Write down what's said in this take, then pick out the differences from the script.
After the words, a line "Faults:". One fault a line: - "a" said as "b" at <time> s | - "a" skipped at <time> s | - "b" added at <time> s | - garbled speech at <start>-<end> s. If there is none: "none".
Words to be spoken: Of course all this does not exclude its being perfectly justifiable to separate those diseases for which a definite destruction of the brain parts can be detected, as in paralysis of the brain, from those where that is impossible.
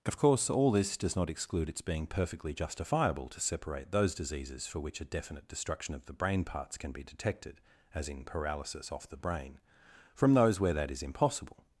Of course all this does not exclude its being perfectly justifiable to separate those diseases for which a definite destruction of the brain parts can be detected, as in paralysis off the brain, from those where that is impossible.
Faults:
- "of" said as "off" at 8.9 s